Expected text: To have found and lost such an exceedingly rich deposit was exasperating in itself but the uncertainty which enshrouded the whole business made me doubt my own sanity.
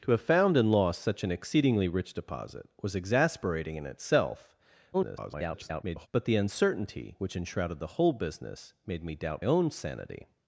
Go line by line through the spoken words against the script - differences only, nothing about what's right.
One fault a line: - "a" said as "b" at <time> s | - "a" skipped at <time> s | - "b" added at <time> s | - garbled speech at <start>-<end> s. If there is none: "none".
- garbled speech at 4.9-6.1 s
- "my" skipped at 9.4 s